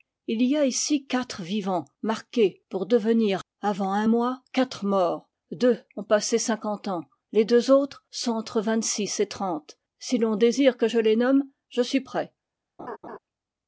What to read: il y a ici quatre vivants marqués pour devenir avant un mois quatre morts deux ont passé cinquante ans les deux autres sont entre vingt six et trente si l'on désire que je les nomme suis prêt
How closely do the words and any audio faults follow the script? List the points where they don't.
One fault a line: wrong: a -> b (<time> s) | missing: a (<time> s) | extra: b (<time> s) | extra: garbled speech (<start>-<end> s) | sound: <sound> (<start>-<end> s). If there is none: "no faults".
extra: je (11.7 s)
sound: laugh (12.8-13.2 s)